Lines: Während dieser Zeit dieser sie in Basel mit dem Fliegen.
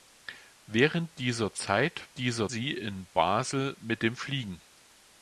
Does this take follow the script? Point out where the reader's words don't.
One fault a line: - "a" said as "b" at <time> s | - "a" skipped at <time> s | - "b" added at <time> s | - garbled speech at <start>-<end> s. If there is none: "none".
none